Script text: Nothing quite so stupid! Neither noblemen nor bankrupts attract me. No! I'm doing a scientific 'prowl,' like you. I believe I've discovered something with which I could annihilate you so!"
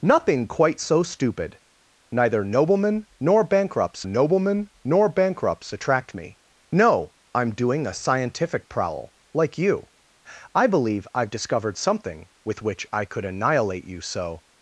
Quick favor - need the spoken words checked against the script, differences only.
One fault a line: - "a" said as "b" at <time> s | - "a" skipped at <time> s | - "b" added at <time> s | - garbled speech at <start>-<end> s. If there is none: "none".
- "noblemen nor bankrupts" added at 4.0 s